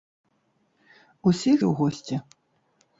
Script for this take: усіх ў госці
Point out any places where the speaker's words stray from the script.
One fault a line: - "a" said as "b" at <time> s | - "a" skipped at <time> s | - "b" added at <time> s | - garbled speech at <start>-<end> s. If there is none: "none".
none